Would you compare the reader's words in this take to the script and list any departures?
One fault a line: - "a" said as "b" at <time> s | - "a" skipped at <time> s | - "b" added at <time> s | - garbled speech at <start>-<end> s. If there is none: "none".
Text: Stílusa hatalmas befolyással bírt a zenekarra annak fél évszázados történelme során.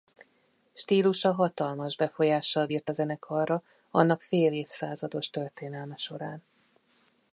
none